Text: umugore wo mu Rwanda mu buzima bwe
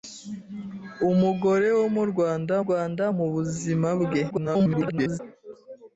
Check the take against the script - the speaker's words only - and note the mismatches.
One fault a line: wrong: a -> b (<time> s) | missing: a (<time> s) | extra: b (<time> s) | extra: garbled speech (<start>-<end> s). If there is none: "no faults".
extra: Rwanda (2.6 s)
extra: garbled speech (4.3-5.2 s)